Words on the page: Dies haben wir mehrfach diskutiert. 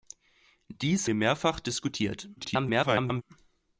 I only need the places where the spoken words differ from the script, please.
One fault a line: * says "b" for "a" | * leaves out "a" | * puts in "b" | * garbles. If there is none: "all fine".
* leaves out "haben"
* garbles